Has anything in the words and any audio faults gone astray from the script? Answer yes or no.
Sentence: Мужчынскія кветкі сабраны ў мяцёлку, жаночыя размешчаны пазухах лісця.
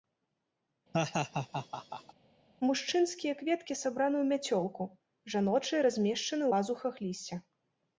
yes